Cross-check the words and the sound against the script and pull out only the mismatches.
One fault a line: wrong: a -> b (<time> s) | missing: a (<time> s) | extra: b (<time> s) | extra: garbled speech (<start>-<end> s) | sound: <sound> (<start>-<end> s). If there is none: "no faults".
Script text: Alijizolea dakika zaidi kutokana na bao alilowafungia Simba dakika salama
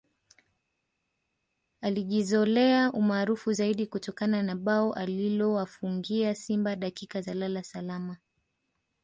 wrong: dakika -> umaarufu (2.9 s)
extra: za lala (7.2 s)